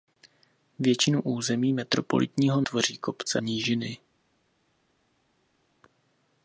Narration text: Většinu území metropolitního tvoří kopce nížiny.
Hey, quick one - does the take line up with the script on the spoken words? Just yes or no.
yes